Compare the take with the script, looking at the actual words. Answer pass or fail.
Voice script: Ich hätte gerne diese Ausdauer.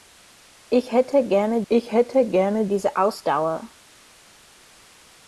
fail